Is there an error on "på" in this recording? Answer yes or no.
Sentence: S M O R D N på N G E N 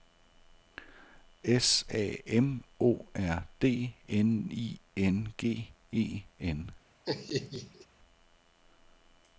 yes